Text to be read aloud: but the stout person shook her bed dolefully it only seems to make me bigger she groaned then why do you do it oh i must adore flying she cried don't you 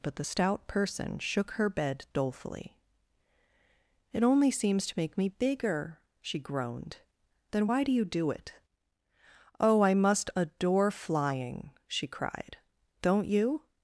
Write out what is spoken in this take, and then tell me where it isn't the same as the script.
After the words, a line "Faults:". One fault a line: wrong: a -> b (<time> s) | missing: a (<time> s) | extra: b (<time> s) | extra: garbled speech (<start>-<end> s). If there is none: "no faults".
but the stout person shook her bed dolefully it only seems to make me bigger she groaned then why do you do it oh i must adore flying she cried don't you
Faults:
no faults